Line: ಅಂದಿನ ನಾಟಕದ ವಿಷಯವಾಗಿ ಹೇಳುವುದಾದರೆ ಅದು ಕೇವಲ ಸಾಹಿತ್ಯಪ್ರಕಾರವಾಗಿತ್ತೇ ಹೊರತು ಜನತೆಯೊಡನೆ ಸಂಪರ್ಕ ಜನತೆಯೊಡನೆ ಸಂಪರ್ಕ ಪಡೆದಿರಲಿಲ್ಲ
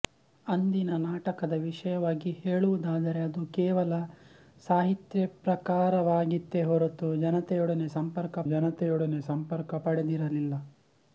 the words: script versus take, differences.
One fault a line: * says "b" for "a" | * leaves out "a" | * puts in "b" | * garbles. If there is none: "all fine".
all fine